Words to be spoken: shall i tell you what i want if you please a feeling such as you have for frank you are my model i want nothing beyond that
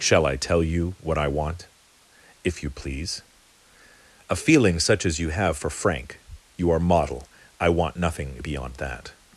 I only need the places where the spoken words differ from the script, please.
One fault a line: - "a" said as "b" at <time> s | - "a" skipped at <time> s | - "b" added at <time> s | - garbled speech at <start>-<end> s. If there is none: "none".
- "my" skipped at 6.8 s